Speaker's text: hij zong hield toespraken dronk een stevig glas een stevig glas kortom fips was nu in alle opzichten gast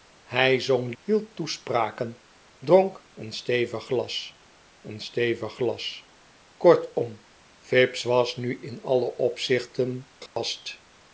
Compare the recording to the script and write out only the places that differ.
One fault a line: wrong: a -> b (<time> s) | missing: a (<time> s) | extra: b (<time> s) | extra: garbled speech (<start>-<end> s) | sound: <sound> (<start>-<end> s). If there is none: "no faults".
sound: dropout (10.3-10.4 s)